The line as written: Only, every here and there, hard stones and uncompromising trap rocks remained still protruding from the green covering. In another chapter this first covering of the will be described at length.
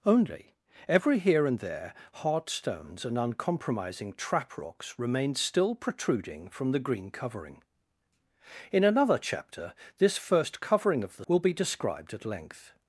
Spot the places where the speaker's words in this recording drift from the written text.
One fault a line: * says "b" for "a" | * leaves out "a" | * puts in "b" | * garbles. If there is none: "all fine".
all fine